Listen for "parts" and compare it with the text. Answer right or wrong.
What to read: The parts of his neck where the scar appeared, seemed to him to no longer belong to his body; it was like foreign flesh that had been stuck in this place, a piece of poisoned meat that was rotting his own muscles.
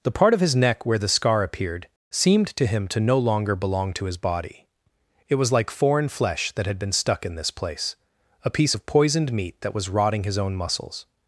wrong